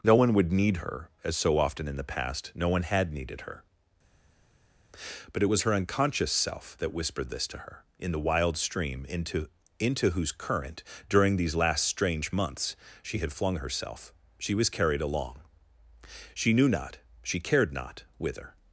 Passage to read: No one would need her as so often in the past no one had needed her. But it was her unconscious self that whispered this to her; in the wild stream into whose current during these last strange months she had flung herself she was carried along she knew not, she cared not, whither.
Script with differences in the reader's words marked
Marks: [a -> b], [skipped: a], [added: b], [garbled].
No one would need her as so often in the past no one had needed her. But it was her unconscious self that whispered this to her; in the wild stream into [added: into] whose current during these last strange months she had flung herself she was carried along she knew not, she cared not, whither.